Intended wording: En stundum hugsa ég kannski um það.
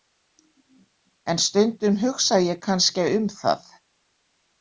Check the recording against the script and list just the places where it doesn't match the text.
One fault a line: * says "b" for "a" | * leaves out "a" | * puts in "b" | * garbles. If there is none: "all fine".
all fine